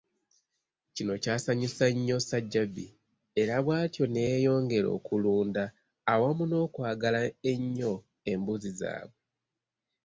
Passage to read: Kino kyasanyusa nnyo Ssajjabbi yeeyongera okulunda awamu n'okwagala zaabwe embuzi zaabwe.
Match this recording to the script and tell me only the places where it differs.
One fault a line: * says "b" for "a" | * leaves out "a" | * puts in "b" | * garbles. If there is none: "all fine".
* puts in "era bwatyo ne"
* says "ennyo" for "zaabwe"